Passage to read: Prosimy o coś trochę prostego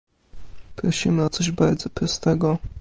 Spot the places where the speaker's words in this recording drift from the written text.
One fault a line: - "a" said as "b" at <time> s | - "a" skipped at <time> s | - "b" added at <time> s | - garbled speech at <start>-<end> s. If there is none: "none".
- "trochę" said as "bardzo" at 1.5 s